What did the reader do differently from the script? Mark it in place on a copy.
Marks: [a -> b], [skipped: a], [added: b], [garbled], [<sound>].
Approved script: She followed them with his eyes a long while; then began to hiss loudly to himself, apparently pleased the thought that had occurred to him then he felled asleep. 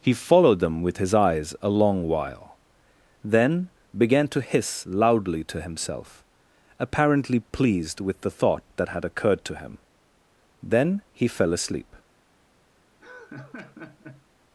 [She -> He] followed them with his eyes a long while; then began to hiss loudly to himself, apparently pleased [added: with] the thought that had occurred to him then he [felled -> fell] asleep. [laugh]